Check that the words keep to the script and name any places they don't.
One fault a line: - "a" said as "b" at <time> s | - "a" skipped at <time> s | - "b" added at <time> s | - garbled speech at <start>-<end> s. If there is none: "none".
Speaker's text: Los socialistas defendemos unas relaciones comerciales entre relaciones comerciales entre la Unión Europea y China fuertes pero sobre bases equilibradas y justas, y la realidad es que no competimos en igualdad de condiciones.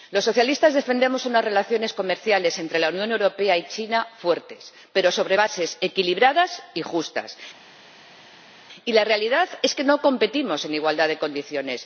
- "relaciones comerciales entre" skipped at 2.8 s